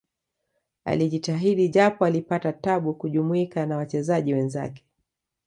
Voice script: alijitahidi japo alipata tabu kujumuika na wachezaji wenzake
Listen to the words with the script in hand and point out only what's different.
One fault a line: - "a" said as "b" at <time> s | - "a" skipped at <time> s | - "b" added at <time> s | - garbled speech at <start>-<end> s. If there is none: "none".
none